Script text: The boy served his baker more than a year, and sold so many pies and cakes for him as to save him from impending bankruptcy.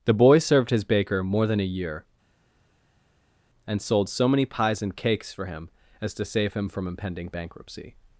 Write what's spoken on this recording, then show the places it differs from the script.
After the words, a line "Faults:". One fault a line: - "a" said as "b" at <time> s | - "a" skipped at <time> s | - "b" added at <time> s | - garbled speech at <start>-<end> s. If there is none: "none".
The boy served his baker more than a year, and sold so many pies and cakes for him as to save him from impending bankruptcy.
Faults:
none